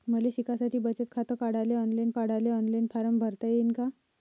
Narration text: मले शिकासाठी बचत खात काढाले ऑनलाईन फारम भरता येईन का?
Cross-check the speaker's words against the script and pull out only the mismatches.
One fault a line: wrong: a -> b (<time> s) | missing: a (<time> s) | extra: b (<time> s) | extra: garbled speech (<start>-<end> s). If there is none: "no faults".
extra: काढाले ऑनलाईन (2.1 s)